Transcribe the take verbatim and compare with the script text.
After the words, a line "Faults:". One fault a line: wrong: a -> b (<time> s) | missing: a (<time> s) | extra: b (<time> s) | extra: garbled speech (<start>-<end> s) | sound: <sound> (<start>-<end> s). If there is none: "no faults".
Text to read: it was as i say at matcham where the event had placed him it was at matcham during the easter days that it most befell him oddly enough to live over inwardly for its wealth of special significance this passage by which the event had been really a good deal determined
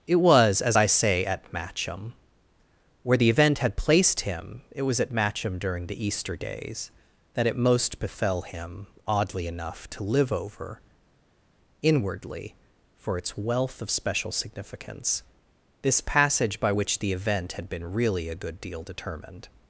it was as i say at matcham where the event had placed him it was at matcham during the easter days that it most befell him oddly enough to live over inwardly for its wealth of special significance this passage by which the event had been really a good deal determined
Faults:
no faults